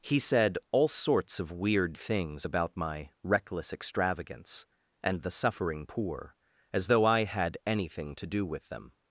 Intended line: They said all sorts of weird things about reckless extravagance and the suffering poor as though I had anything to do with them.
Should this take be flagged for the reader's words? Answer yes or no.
yes